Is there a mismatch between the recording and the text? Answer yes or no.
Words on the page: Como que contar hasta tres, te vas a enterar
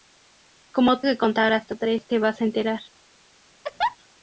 no